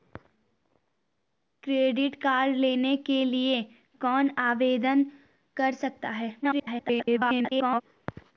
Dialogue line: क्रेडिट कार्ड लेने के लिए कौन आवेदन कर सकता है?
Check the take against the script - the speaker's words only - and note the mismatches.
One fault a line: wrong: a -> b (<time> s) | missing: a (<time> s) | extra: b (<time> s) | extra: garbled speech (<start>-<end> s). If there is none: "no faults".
extra: garbled speech (6.4-7.8 s)